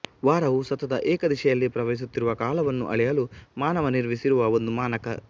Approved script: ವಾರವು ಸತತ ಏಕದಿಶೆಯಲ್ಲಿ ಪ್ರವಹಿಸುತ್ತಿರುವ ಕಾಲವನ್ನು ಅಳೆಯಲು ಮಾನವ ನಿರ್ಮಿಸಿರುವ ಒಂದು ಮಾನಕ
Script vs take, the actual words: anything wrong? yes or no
no